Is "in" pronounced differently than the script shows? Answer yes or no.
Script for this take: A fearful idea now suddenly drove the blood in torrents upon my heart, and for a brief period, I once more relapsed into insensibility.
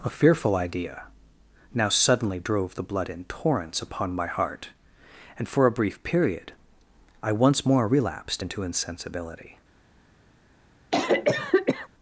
no